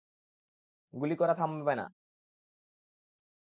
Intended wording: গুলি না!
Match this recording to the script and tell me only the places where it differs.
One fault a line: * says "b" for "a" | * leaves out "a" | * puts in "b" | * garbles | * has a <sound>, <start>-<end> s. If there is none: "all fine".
* puts in "করা থামাবে"